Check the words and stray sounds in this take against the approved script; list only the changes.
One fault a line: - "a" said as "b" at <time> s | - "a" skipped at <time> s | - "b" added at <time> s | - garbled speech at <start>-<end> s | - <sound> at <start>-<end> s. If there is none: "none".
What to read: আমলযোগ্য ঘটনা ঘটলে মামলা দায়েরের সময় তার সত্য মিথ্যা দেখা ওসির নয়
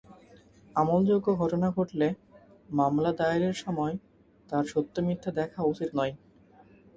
none